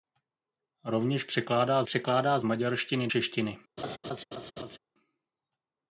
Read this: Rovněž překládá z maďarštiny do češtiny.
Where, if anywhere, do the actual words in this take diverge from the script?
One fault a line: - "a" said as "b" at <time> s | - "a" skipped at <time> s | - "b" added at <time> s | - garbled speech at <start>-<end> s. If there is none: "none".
- "překládá" added at 1.8 s
- "do" skipped at 3.1 s